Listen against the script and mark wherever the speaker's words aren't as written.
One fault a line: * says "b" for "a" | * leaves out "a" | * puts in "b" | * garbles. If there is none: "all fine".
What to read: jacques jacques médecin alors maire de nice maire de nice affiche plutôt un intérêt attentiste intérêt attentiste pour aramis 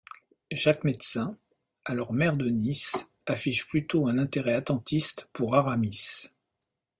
* leaves out "jacques"
* leaves out "maire de nice"
* leaves out "intérêt attentiste"